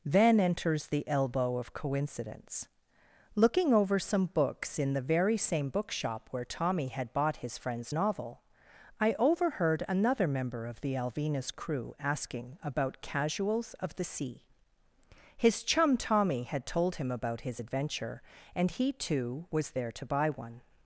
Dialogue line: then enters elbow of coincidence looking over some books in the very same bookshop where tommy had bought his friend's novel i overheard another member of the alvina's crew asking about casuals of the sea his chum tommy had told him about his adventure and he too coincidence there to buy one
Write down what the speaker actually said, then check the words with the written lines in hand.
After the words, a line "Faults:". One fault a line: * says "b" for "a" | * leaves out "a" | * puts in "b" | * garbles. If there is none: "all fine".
then enters the elbow of coincidence looking over some books in the very same bookshop where tommy had bought his friend's novel i overheard another member of the alvina's crew asking about casuals of the sea his chum tommy had told him about his adventure and he too was there to buy one
Faults:
* puts in "the"
* says "was" for "coincidence"